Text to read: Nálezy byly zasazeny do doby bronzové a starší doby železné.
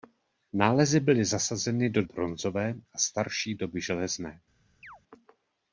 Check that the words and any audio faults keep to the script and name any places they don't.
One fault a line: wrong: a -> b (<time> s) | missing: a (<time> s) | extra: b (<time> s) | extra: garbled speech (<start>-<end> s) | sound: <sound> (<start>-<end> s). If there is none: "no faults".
missing: doby (2.0 s)
sound: chirp (4.8-5.0 s)